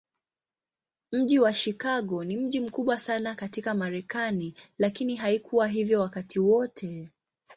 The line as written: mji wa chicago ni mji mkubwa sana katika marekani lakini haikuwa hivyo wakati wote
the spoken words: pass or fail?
pass